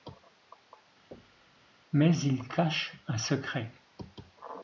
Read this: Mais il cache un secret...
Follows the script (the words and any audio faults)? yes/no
no